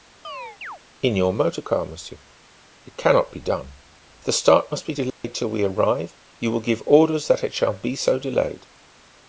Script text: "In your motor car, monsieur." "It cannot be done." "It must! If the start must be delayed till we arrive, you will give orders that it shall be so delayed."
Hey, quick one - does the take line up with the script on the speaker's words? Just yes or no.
no